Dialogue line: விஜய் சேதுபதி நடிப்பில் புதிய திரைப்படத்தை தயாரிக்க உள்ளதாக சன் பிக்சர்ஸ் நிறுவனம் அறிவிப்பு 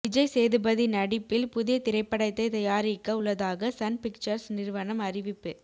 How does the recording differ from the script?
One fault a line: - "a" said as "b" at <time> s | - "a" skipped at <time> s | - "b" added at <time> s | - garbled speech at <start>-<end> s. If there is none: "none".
none